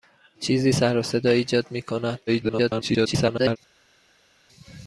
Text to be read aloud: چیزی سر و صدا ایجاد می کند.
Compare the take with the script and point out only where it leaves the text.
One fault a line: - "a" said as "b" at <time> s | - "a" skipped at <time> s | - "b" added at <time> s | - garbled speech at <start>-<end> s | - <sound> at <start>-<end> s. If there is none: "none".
- garbled speech at 2.3-3.6 s